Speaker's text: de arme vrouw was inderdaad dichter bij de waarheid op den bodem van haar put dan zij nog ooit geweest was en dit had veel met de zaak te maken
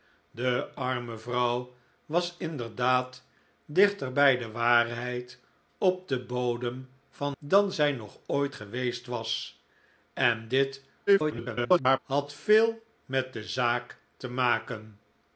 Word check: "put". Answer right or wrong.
wrong